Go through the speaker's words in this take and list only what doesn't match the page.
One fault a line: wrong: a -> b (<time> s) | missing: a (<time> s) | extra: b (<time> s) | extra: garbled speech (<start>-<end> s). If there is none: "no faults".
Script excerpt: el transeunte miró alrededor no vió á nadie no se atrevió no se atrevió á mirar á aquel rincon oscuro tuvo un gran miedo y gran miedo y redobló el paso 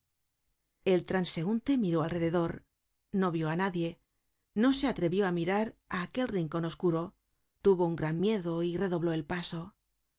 missing: no se atrevió (5.3 s)
missing: gran miedo y (8.8 s)